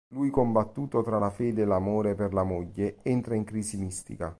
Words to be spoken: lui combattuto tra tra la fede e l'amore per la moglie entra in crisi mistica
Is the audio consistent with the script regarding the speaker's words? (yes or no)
no